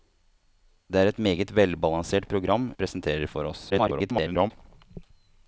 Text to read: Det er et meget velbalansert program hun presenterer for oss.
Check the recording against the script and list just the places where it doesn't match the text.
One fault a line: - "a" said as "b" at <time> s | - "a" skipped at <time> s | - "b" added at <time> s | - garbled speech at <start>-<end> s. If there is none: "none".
- "hun" skipped at 2.6 s
- garbled speech at 3.7-4.5 s